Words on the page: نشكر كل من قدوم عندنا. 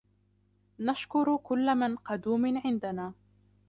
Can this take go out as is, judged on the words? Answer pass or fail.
pass